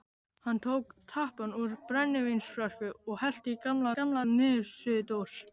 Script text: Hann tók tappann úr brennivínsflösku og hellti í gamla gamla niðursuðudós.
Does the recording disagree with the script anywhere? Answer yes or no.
no